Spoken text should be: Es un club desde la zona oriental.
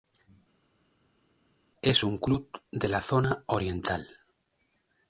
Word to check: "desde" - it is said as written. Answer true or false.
false